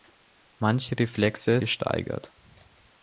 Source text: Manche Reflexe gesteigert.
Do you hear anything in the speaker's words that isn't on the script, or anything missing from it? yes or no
no